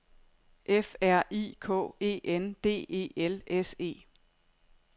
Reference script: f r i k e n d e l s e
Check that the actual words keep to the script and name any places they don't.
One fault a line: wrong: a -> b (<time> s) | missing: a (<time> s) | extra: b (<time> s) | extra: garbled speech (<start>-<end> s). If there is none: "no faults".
no faults